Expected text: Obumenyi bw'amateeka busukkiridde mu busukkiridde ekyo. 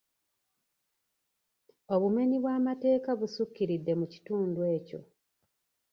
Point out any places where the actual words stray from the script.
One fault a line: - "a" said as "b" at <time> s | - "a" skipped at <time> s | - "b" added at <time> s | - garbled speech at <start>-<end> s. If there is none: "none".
- "busukkiridde" said as "kitundu" at 4.1 s